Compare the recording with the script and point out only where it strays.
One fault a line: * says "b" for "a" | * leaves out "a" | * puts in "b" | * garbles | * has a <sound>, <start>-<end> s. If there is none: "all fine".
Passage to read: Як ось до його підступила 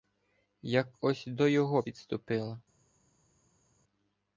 all fine